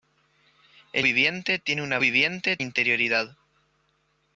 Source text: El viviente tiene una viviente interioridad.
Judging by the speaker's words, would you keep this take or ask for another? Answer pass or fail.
pass